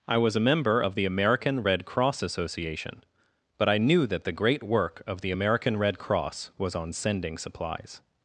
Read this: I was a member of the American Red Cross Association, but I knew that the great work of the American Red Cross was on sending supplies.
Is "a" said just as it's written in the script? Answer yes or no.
yes